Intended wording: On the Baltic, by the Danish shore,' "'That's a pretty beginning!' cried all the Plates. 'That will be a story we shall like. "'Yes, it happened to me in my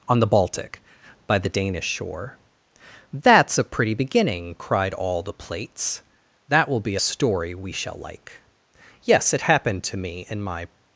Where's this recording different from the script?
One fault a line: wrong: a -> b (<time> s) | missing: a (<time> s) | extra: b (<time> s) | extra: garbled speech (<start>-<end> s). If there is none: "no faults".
no faults